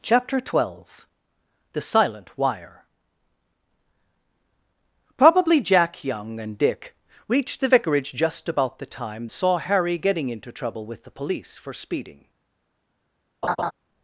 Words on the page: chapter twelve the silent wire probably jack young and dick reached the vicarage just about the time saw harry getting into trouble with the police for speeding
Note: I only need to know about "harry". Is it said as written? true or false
true